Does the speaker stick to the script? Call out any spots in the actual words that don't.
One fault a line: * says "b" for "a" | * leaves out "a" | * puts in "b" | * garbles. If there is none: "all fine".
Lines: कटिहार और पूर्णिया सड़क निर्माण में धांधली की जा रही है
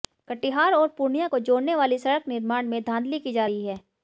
* puts in "को जोड़ने वाली"